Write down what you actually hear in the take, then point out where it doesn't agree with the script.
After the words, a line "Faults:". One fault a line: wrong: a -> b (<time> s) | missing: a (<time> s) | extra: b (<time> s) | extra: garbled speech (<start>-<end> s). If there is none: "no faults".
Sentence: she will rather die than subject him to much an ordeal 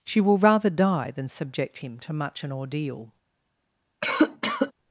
she will rather die than subject him to much an ordeal
Faults:
no faults